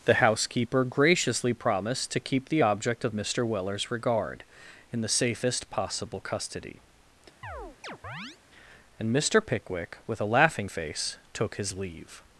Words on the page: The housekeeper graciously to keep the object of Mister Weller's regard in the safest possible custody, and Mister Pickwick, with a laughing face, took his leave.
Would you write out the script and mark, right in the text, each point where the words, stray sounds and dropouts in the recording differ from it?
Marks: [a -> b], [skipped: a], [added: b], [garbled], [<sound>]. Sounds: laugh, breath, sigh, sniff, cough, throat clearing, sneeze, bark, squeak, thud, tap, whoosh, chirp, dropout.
The housekeeper graciously [added: promised] to keep the object of Mister Weller's regard in the safest possible custody, [chirp] and Mister Pickwick, with a laughing face, took his leave.